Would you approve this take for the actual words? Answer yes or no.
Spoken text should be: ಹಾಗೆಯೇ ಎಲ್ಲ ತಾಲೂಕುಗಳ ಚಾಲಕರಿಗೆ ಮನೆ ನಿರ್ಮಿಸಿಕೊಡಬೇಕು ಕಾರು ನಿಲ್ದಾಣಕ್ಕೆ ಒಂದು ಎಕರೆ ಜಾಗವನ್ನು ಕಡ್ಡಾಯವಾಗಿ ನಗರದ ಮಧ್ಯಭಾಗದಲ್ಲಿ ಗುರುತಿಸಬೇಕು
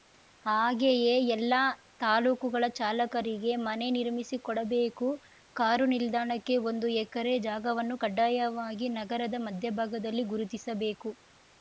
yes